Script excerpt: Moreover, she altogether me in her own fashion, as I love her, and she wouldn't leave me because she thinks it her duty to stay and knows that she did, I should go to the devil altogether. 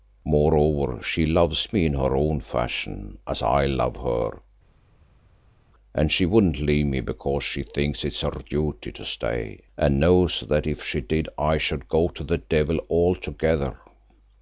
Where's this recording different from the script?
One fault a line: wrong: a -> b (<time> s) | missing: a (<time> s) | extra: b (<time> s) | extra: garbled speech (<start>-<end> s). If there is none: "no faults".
wrong: altogether -> loves (1.3 s)
extra: if (10.7 s)